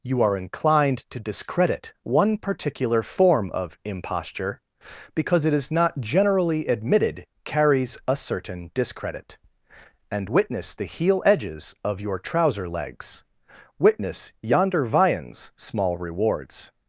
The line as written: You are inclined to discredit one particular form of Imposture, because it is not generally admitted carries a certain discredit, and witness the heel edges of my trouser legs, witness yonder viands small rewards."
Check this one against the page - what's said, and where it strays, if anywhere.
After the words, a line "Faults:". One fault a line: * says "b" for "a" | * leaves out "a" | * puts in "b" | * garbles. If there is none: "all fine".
You are inclined to discredit one particular form of Imposture, because it is not generally admitted carries a certain discredit, and witness the heel edges of your trouser legs, witness yonder viands small rewards."
Faults:
* says "your" for "my"